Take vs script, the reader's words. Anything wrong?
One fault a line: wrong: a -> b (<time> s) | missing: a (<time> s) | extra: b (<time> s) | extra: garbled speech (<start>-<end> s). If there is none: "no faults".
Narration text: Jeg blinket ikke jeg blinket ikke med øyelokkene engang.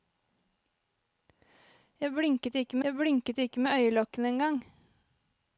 no faults